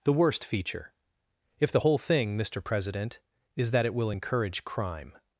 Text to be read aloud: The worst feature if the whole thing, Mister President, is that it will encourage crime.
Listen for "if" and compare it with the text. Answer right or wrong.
right